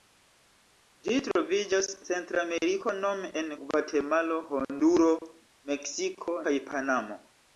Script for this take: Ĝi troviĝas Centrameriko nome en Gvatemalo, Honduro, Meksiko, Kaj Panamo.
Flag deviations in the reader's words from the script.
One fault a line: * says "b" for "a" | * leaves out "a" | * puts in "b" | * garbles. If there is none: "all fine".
all fine